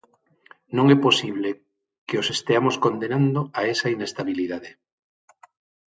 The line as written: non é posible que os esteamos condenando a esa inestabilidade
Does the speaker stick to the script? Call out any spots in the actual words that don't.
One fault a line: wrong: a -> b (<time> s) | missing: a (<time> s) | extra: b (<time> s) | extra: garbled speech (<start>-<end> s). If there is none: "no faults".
no faults